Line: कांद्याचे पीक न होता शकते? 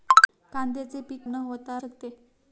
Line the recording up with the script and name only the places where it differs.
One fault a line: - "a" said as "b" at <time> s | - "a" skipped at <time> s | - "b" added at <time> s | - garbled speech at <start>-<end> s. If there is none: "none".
none